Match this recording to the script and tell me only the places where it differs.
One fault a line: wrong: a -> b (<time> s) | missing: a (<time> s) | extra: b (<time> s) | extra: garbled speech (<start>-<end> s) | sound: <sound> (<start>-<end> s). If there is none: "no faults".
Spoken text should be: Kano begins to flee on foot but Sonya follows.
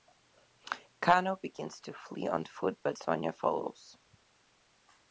no faults